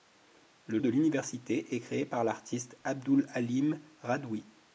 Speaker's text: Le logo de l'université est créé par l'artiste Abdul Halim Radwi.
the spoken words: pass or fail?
fail